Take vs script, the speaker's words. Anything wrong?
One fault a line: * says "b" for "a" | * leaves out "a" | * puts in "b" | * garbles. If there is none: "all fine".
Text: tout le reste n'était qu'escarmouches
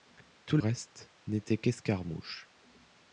* leaves out "le"